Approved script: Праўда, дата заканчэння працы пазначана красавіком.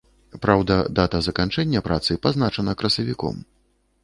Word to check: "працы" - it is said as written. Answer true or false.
true